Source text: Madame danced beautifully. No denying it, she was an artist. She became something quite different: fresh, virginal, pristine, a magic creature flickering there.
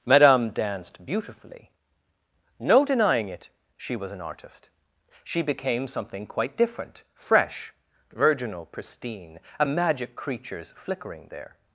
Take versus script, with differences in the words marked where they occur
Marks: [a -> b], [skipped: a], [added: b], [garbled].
Madame danced beautifully. No denying it, she was an artist. She became something quite different: fresh, virginal, pristine, a magic [creature -> creatures] flickering there.